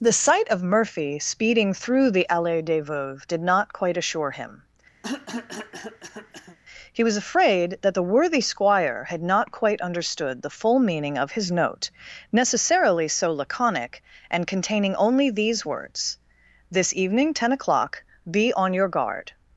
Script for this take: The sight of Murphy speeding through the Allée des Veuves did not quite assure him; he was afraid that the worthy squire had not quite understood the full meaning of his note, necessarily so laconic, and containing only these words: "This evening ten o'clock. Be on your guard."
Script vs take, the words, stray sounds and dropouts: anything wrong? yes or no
yes